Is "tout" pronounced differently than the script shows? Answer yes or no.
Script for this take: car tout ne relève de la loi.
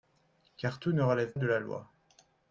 no